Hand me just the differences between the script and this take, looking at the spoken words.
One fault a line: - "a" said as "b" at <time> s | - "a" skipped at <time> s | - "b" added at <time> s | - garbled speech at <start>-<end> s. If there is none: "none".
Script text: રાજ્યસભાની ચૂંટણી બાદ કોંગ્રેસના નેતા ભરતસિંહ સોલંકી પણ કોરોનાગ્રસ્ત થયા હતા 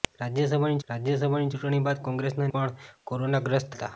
- "રાજ્યસભાની" added at 0.9 s
- "નેતા ભરતસિંહ સોલંકી" skipped at 2.5 s
- "થયા" skipped at 3.8 s